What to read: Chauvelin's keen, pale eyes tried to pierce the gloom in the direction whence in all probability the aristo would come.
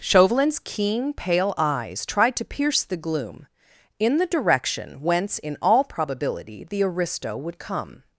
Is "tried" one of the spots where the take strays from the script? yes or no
no